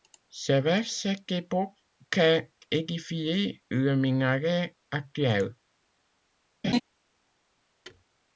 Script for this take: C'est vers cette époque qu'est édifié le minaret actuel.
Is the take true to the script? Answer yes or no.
yes